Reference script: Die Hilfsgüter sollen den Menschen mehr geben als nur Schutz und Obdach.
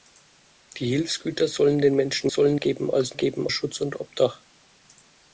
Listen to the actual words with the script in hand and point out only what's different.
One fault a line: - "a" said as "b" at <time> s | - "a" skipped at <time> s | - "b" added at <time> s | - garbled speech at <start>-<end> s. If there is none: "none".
- "mehr" said as "sollen" at 2.3 s
- "nur" said as "geben" at 3.1 s